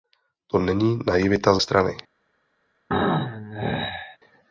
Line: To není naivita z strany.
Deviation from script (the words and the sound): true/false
true